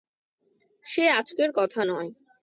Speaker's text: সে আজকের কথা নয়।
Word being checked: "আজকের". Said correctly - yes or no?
yes